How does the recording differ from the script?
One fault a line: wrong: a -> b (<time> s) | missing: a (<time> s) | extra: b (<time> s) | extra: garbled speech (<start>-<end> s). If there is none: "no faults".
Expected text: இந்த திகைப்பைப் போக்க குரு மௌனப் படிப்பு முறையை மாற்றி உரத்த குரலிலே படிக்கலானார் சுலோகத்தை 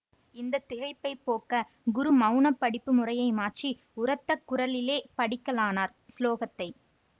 no faults